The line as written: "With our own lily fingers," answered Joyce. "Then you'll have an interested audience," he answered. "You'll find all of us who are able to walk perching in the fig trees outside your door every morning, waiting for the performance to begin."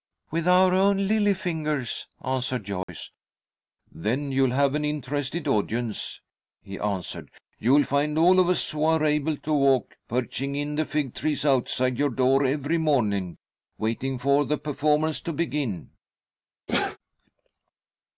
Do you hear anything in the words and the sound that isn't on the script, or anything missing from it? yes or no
yes